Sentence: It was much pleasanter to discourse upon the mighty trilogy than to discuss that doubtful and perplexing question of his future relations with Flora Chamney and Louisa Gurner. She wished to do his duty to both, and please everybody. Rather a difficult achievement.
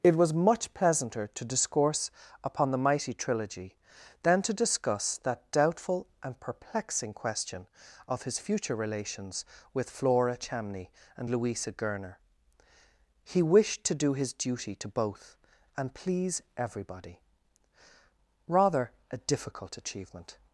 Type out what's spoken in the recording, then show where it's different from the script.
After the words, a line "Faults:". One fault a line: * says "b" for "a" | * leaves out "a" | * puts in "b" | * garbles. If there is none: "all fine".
It was much pleasanter to discourse upon the mighty trilogy than to discuss that doubtful and perplexing question of his future relations with Flora Chamney and Louisa Gurner. He wished to do his duty to both, and please everybody. Rather a difficult achievement.
Faults:
* says "He" for "She"